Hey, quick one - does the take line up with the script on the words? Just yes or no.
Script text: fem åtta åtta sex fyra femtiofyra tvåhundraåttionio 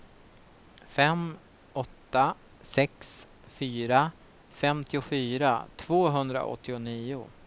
no